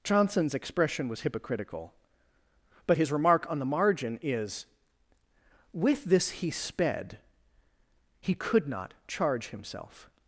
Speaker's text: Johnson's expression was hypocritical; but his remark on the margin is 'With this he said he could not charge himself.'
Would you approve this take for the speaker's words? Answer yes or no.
no